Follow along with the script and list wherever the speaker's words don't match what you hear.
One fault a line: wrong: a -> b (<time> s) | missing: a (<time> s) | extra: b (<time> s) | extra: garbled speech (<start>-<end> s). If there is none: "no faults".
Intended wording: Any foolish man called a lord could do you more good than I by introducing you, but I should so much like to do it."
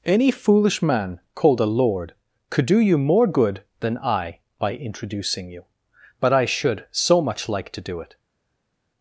no faults